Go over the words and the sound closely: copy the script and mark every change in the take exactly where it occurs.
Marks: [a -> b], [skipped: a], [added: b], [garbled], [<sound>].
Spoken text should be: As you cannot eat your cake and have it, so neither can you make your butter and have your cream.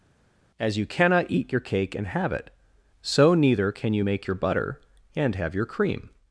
As you cannot eat your cake and have it, so neither can you make your butter and have your cream.